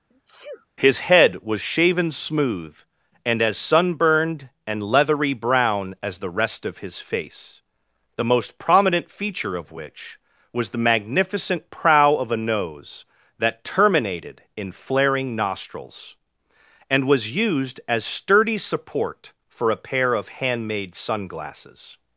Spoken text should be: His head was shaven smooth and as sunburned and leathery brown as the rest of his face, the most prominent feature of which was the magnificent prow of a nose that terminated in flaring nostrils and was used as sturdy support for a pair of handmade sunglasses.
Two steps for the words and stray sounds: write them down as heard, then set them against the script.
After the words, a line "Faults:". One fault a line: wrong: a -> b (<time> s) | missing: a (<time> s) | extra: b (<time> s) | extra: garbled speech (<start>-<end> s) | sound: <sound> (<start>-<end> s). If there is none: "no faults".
His head was shaven smooth and as sunburned and leathery brown as the rest of his face, the most prominent feature of which was the magnificent prow of a nose that terminated in flaring nostrils and was used as sturdy support for a pair of handmade sunglasses.
Faults:
sound: sneeze (0.1-0.7 s)